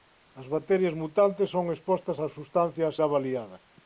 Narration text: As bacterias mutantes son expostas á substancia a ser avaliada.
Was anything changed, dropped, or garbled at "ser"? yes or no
yes